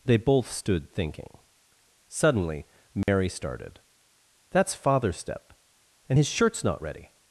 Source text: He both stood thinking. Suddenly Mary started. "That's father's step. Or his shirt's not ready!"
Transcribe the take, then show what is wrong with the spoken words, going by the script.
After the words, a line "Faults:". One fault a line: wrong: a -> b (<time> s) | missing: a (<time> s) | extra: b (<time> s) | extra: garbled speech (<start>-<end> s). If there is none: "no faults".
They both stood thinking. Suddenly Mary started. "That's father's step. And his shirt's not ready!"
Faults:
wrong: He -> They (0.1 s)
wrong: Or -> And (6.1 s)